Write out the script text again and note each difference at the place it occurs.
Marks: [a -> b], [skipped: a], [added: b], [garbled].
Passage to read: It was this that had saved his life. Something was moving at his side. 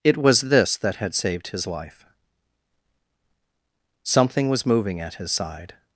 It was this that had saved his life. Something was moving at his side.